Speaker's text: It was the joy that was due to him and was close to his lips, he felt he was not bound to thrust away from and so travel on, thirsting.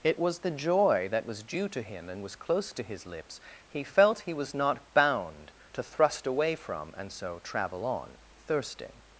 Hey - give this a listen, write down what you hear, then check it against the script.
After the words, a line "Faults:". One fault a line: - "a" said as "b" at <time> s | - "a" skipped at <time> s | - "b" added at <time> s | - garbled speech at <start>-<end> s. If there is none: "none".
It was the joy that was due to him and was close to his lips, he felt he was not bound to thrust away from and so travel on, thirsting.
Faults:
none